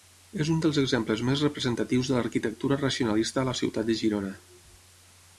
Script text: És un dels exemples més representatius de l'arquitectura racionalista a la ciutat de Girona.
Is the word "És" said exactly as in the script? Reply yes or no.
yes